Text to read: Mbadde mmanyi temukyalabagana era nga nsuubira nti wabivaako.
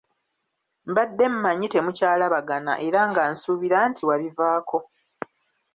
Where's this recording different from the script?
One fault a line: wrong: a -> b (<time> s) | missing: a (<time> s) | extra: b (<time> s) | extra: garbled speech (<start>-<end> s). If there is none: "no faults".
no faults